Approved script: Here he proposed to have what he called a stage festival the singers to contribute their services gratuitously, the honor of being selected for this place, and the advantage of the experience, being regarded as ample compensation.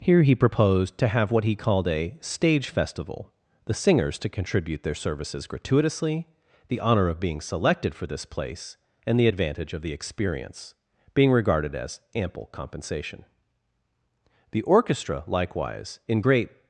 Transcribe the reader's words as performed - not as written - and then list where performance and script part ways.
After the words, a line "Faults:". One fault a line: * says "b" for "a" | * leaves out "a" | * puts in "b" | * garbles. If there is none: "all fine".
Here he proposed to have what he called a stage festival the singers to contribute their services gratuitously, the honor of being selected for this place, and the advantage of the experience, being regarded as ample compensation. The orchestra, likewise, in great
Faults:
* puts in "The orchestra likewise in great"